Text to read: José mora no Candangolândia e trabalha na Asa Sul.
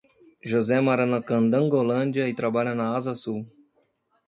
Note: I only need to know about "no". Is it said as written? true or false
false